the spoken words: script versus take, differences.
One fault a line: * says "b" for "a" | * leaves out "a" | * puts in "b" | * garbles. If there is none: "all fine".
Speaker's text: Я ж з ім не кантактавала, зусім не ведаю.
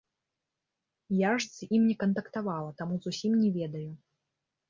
* puts in "таму"